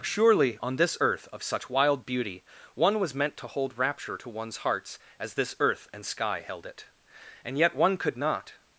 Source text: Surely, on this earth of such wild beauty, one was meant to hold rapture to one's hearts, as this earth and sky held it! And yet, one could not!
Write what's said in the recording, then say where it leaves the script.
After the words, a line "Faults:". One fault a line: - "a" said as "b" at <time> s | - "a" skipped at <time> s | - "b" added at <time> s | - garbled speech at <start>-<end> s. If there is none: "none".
Surely, on this earth of such wild beauty, one was meant to hold rapture to one's hearts, as this earth and sky held it! And yet, one could not!
Faults:
none